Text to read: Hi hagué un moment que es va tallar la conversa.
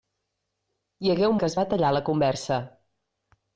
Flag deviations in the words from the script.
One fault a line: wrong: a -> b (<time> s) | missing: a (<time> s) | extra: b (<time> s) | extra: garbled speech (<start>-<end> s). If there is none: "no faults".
missing: moment (1.4 s)